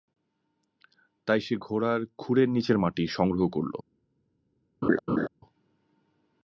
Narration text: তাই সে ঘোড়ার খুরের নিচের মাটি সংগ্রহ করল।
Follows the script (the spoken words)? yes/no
yes